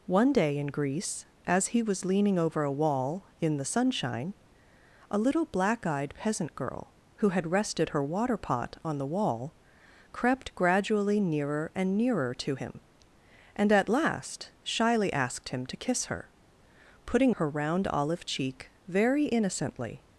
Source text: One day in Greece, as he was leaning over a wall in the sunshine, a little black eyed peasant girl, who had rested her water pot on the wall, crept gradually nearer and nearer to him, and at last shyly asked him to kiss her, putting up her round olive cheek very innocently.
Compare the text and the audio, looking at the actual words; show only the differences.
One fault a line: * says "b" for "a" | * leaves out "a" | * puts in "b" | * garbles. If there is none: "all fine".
* leaves out "up"